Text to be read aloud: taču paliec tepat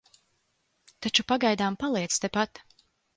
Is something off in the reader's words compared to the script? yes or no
yes